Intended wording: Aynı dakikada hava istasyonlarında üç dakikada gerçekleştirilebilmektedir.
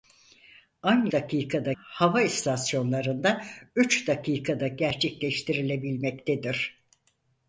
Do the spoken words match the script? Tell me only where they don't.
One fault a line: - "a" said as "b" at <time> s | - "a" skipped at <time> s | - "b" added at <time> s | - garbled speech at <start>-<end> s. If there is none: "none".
none